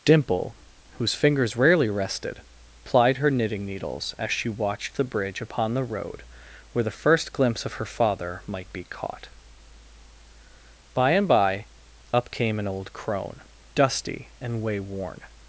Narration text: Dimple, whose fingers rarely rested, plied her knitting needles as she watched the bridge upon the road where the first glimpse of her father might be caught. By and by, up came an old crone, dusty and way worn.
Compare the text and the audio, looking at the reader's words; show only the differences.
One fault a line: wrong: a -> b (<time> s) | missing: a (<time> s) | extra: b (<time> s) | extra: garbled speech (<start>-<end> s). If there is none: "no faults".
no faults